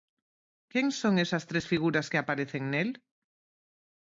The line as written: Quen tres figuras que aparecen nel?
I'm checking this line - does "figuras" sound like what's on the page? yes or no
yes